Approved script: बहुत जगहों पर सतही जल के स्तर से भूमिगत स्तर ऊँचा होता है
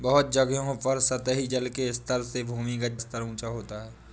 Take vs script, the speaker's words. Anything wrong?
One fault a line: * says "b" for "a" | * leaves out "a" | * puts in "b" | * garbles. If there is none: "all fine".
all fine